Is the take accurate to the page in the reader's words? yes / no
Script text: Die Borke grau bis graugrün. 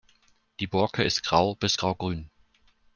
no